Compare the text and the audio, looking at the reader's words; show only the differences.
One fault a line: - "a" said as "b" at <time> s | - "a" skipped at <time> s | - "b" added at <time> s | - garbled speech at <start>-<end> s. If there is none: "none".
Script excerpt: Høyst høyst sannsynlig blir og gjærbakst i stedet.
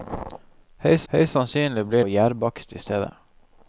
none